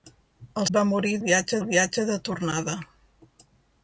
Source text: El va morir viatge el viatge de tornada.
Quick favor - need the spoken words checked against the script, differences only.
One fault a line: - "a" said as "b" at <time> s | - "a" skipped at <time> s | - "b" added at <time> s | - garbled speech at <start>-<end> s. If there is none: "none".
none